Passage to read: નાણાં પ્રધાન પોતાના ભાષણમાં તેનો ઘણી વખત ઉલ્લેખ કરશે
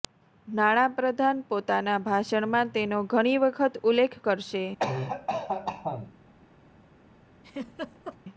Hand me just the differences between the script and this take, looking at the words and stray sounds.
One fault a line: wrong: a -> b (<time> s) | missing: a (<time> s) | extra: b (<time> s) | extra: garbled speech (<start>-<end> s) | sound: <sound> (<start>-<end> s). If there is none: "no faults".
sound: cough (4.8-6.1 s)
sound: laugh (7.4-8.2 s)